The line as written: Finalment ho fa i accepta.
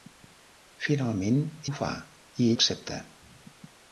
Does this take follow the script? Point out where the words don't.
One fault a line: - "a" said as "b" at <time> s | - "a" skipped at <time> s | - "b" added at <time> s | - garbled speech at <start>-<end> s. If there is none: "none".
none